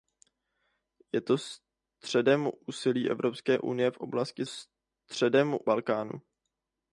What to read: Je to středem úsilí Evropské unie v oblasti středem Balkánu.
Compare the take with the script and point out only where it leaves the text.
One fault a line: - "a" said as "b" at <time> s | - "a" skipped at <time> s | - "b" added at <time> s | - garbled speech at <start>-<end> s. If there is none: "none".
none